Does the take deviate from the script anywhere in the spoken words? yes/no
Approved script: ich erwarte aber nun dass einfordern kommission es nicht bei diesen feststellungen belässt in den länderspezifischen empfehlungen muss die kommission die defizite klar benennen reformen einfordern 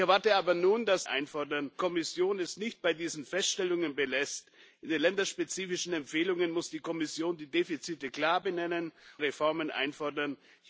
no